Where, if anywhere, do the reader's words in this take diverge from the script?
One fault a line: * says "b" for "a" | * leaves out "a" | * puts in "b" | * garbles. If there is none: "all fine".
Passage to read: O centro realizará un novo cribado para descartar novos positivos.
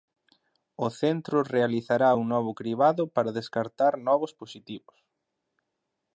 all fine